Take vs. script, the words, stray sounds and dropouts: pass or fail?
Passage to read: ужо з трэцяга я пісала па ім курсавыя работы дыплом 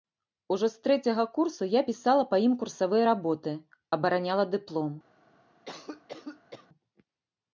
fail